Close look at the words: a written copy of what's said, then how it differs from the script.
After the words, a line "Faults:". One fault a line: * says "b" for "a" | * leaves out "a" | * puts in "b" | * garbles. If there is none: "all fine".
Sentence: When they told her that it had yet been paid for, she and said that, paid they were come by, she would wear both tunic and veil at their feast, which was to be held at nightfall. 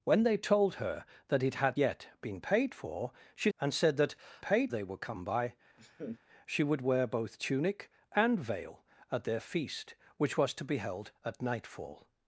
When they told her that it had yet been paid for, she and said that, paid they were come by, she would wear both tunic and veil at their feast, which was to be held at nightfall.
Faults:
all fine